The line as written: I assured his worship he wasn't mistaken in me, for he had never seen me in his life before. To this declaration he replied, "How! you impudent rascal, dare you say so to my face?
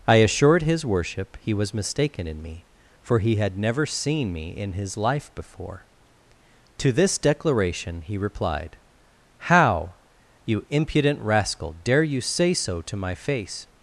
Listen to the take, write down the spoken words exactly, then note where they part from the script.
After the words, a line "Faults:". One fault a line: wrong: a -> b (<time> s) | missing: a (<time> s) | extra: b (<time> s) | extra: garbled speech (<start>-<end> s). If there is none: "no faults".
I assured his worship he was mistaken in me, for he had never seen me in his life before. To this declaration he replied, "How! you impudent rascal, dare you say so to my face?
Faults:
wrong: wasn't -> was (1.5 s)